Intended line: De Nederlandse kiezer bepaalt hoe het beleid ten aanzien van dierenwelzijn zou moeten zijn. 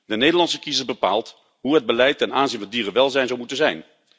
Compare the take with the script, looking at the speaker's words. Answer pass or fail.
pass